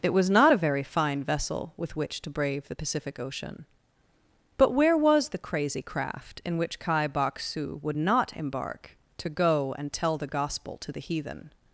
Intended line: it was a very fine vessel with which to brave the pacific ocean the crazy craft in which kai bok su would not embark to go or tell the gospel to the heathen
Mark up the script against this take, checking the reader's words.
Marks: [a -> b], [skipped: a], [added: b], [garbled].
it was [added: not] a very fine vessel with which to brave the pacific ocean [added: but where was] the crazy craft in which kai bok su would not embark to go [or -> and] tell the gospel to the heathen